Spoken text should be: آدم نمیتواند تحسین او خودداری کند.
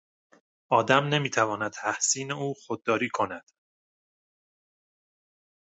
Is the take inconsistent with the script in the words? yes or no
no